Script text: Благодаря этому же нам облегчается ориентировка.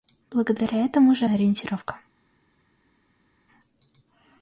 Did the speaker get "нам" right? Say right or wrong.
wrong